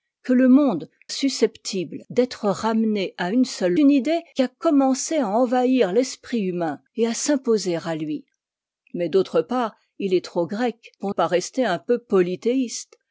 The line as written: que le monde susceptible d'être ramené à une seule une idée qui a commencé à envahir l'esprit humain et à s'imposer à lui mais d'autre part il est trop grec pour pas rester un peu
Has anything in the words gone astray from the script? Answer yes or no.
no